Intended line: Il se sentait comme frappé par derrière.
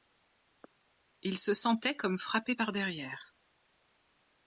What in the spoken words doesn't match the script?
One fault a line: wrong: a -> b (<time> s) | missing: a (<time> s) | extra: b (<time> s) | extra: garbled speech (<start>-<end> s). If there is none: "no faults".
no faults